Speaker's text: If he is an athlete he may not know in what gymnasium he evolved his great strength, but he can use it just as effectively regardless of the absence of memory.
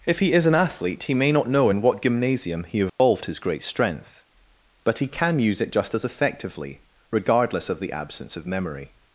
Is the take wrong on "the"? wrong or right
right